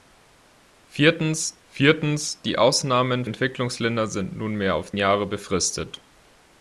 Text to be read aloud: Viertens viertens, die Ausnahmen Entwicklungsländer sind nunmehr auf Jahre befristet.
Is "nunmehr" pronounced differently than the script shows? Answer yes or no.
no